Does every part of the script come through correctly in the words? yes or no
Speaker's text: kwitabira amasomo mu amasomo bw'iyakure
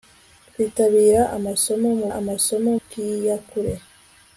yes